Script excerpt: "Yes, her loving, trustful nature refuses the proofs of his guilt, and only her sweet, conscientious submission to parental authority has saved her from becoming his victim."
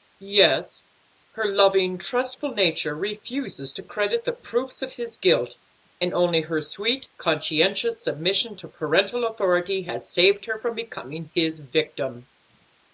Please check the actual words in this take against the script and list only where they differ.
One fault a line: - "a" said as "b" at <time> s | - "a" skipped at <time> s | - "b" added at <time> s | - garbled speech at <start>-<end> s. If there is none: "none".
- "to credit" added at 3.7 s